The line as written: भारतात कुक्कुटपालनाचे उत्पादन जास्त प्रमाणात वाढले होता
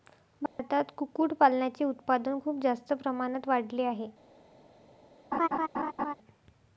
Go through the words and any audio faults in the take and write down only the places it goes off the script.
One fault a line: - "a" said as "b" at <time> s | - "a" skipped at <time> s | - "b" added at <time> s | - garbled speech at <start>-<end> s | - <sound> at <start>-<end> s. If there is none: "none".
- dropout at 0.5-0.6 s
- "खूप" added at 2.4 s
- "होता" said as "आहे" at 3.8 s
- laugh at 5.3-6.1 s